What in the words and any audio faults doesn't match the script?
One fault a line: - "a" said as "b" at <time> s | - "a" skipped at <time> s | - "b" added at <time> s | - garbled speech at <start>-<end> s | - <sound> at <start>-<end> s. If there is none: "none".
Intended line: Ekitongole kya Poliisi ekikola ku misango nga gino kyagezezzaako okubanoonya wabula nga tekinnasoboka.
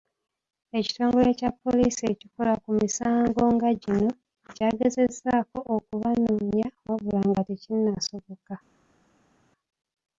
none